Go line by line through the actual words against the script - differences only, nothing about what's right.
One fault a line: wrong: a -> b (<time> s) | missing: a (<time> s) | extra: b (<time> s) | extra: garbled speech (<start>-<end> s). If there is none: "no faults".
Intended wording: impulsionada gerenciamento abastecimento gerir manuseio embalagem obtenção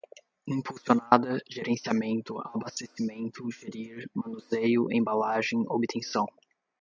no faults